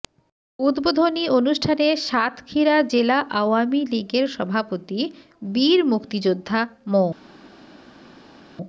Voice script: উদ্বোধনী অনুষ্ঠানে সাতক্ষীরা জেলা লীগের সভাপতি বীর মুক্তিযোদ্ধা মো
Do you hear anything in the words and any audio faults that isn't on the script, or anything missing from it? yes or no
yes